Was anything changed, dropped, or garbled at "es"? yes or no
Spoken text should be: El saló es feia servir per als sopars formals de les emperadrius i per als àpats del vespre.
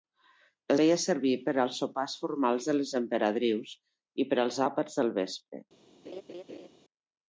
yes